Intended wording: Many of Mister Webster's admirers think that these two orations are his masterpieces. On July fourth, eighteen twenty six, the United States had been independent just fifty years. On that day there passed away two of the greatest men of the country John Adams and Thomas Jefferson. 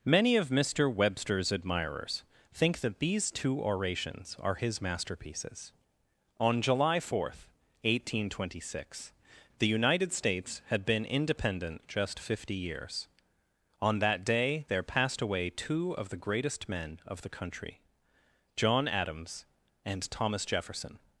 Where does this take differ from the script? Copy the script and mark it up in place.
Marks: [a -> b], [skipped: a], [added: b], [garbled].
Many of Mister Webster's admirers think that these two orations are his masterpieces. On July fourth, eighteen twenty six, the United States had been independent just fifty years. On that day there passed away two of the greatest men of the country John Adams and Thomas Jefferson.